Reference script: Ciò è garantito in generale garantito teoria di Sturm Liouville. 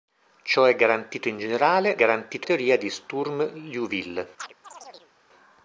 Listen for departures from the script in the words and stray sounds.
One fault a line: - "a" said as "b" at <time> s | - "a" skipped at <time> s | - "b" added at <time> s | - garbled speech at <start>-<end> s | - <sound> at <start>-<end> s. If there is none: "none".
- chirp at 4.4-5.1 s